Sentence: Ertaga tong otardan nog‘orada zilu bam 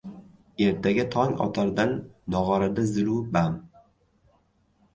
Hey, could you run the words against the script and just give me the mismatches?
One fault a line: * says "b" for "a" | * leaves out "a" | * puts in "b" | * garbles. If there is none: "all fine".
all fine